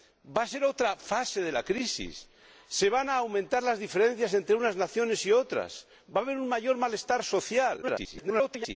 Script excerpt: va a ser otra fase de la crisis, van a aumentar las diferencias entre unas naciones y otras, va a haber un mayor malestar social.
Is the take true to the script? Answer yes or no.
no